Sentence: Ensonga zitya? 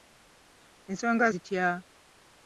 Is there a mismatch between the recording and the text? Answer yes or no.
no